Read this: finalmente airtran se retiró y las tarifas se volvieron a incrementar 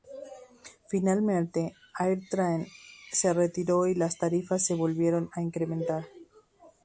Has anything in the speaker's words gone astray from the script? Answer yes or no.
no